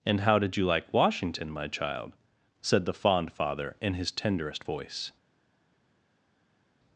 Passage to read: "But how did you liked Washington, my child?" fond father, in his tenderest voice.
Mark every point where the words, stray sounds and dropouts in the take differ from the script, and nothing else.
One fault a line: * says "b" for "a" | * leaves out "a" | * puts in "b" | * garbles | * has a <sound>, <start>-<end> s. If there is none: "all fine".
* says "And" for "But"
* says "like" for "liked"
* puts in "said the"